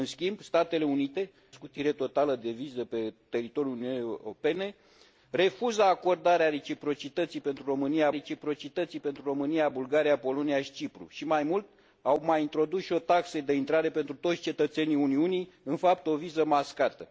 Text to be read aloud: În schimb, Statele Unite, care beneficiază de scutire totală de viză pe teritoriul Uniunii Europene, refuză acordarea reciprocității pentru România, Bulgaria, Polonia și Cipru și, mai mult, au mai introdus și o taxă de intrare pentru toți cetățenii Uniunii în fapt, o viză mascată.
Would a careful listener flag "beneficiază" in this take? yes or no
yes